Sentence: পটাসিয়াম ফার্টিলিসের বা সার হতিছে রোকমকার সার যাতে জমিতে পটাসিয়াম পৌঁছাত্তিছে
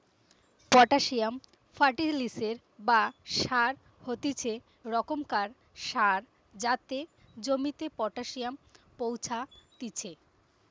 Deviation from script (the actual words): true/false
false